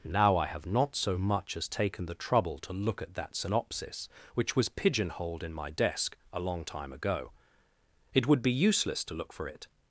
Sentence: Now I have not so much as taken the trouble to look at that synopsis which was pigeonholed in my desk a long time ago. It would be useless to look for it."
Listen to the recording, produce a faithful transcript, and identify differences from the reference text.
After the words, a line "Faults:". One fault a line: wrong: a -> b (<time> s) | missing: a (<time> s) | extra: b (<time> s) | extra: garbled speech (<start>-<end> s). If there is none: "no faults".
Now I have not so much as taken the trouble to look at that synopsis which was pigeonholed in my desk a long time ago. It would be useless to look for it."
Faults:
no faults